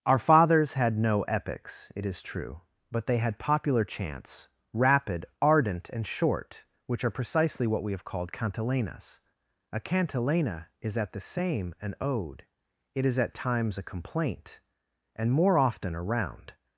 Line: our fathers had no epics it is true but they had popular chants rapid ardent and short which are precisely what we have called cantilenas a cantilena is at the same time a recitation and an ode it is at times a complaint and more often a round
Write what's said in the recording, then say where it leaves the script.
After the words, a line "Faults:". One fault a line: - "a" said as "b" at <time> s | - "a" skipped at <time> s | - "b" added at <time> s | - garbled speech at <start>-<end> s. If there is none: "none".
our fathers had no epics it is true but they had popular chants rapid ardent and short which are precisely what we have called cantilenas a cantilena is at the same an ode it is at times a complaint and more often a round
Faults:
- "time a recitation and" skipped at 11.8 s